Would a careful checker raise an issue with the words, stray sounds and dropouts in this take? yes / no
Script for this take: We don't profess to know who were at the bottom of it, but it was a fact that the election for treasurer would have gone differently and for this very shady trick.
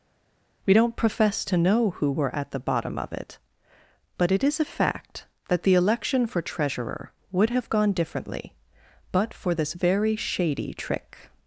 yes